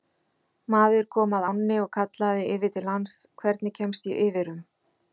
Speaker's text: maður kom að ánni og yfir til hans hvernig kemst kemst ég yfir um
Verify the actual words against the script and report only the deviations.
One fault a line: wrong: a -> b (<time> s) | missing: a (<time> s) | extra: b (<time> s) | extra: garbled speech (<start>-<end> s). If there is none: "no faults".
extra: kallaði (2.0 s)
missing: kemst (4.1 s)